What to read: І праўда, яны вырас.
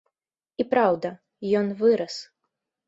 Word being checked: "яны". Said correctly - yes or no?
no